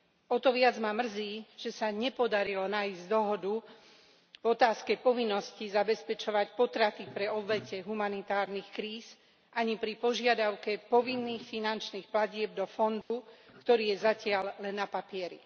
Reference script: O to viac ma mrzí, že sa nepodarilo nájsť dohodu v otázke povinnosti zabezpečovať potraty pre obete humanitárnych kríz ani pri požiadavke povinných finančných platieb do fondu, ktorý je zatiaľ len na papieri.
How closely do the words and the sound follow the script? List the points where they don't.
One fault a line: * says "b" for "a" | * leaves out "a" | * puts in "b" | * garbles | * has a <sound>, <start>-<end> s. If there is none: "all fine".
* has a dropout, 13.0-13.1 s